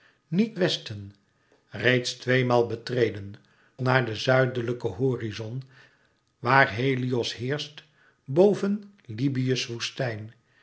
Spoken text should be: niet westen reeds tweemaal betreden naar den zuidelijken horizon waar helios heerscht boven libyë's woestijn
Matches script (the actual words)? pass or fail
pass